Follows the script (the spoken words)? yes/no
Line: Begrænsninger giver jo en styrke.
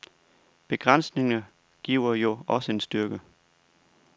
no